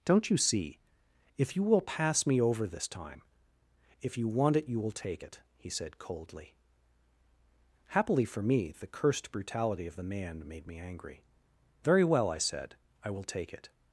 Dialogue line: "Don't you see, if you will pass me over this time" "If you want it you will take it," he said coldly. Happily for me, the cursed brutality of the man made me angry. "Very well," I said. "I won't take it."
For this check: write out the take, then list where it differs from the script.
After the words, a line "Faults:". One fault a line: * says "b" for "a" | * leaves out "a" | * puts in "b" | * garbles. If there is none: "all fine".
"Don't you see, if you will pass me over this time" "If you want it you will take it," he said coldly. Happily for me, the cursed brutality of the man made me angry. "Very well," I said. "I will take it."
Faults:
* says "will" for "won't"